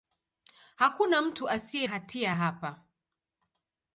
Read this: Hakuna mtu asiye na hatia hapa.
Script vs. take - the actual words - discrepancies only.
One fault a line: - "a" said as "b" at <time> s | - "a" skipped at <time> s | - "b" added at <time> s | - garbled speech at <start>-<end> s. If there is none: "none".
- "na" skipped at 1.9 s